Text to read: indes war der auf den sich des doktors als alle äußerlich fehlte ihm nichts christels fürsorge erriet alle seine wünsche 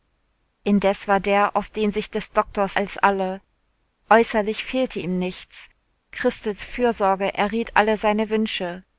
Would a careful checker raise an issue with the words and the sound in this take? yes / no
no